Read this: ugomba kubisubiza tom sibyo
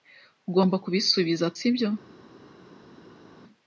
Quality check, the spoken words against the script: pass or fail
fail